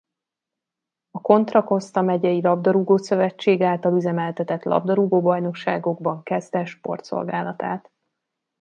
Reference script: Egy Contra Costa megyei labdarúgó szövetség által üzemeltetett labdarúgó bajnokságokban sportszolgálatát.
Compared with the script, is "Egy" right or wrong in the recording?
wrong